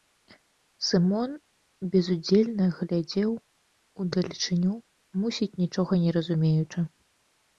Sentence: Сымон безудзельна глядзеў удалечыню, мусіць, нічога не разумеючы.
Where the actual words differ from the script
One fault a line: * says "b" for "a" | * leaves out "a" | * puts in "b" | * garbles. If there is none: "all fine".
all fine